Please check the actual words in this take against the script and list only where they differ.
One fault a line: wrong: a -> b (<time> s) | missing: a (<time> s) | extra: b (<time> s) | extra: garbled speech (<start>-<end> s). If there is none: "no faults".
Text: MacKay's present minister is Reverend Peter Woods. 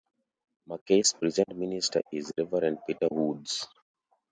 no faults